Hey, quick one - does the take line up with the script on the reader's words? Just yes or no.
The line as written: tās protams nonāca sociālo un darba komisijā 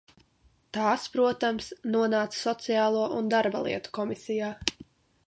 no